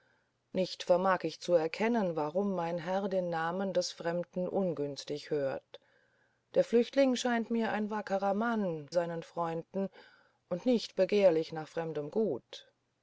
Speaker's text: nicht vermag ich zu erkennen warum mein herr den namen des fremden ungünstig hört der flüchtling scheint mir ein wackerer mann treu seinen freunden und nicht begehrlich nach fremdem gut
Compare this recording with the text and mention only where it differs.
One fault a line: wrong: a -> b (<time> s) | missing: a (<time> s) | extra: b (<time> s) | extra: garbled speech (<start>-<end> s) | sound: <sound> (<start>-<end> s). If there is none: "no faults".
missing: treu (8.9 s)